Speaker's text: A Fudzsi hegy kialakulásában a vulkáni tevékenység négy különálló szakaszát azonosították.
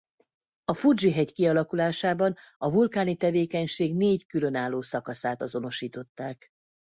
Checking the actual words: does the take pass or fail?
pass